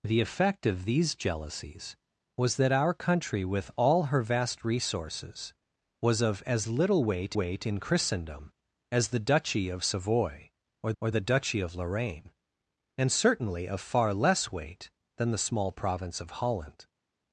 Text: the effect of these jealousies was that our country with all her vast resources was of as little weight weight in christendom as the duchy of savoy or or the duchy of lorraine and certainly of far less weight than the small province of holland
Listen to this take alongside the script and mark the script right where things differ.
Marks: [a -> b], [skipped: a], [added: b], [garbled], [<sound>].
the effect of these jealousies was that our country with all her vast resources was of as little weight weight in christendom as the duchy of savoy or or the duchy of lorraine and certainly of far less weight than the small province of holland